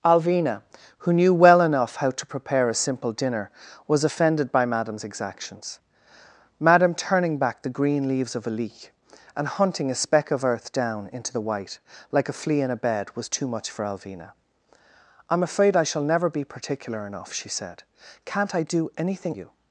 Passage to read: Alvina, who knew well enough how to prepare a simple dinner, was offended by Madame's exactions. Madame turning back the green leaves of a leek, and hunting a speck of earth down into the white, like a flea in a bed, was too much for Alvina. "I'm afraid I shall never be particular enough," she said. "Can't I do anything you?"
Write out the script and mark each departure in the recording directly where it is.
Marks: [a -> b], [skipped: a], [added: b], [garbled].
Alvina, who knew well enough how to prepare a simple dinner, was offended by Madame's exactions. Madame turning back the green leaves of a leek, and hunting a speck of earth down into the white, like a flea in a bed, was too much for Alvina. "I'm afraid I shall never be particular enough," she said. "Can't I do anything you?"